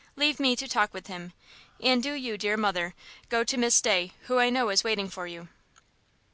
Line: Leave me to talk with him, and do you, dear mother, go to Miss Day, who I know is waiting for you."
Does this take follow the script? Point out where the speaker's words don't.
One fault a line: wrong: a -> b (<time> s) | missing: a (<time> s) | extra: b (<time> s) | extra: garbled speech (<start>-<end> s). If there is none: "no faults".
no faults